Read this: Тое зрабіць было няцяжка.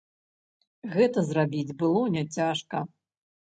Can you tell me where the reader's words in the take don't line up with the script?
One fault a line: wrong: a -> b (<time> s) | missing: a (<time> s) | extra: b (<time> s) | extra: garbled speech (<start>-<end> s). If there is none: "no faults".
wrong: Тое -> Гэта (0.9 s)